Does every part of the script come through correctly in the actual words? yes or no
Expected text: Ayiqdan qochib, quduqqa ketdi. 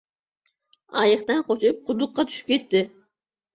no